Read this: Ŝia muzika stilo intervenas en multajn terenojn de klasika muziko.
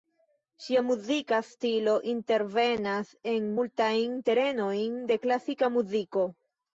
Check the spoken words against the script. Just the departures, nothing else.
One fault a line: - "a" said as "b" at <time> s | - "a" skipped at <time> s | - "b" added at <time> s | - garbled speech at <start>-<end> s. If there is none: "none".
none